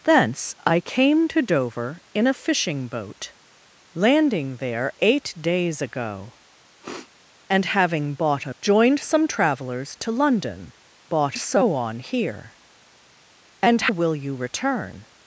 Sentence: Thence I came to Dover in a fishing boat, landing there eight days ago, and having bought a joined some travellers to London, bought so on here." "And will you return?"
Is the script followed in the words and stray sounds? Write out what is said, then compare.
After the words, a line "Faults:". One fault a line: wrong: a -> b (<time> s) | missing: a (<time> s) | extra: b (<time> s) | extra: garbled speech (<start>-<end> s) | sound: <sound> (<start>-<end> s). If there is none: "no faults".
Thence I came to Dover in a fishing boat, landing there eight days ago, and having bought a joined some travellers to London, bought so on here." "And will you return?"
Faults:
sound: sniff (6.8-7.1 s)